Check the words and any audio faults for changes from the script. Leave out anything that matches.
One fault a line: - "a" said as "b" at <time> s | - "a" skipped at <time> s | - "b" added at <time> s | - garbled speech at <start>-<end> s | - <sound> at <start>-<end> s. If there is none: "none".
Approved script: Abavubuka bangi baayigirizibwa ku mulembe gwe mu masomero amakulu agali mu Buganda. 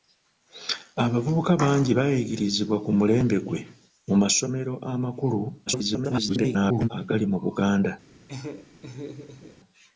- garbled speech at 5.7-6.9 s
- laugh at 8.3-9.6 s